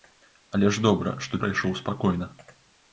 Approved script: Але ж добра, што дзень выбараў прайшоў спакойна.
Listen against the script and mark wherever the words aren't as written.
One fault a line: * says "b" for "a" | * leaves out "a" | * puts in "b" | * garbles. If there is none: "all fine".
* leaves out "дзень выбараў"